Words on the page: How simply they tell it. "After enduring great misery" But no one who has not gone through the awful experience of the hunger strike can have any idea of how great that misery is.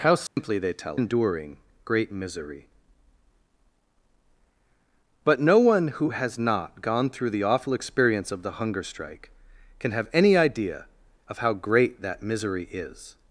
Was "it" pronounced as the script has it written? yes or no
no